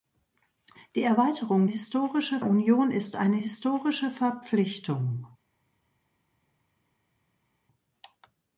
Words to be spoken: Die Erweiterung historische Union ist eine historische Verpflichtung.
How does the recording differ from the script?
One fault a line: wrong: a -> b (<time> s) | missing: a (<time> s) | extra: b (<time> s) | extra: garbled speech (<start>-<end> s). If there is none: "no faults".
no faults